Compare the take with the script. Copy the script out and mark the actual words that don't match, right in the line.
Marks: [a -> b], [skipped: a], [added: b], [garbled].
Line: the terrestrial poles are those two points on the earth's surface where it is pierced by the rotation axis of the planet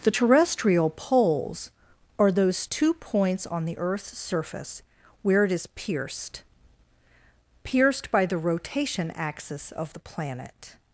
the terrestrial poles are those two points on the earth's surface where it is pierced [added: pierced] by the rotation axis of the planet